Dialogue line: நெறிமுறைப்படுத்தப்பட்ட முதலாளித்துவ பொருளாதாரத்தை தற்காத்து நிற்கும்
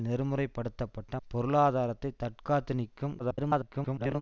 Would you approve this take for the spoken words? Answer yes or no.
no